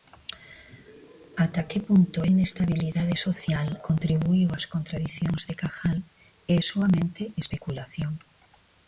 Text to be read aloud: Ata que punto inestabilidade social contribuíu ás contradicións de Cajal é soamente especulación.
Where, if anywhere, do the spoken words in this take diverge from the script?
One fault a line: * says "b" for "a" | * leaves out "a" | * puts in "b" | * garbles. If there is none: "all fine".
all fine